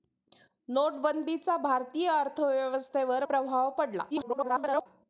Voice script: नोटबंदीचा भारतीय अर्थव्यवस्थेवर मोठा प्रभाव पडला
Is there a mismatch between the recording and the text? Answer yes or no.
yes